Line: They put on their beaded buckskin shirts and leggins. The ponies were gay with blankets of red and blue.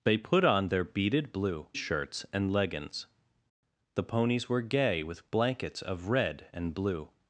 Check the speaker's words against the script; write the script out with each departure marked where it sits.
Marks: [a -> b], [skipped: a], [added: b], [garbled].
They put on their beaded [buckskin -> blue] shirts and leggins. The ponies were gay with blankets of red and blue.